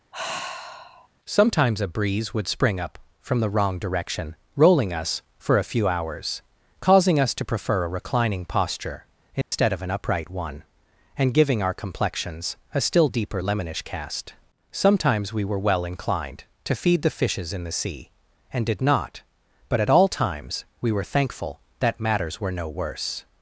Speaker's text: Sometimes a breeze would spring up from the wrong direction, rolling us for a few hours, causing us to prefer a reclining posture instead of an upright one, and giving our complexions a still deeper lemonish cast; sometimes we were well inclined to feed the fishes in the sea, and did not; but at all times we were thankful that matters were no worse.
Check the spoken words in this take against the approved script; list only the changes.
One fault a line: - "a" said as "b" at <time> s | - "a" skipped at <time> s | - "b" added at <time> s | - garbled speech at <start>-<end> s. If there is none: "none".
none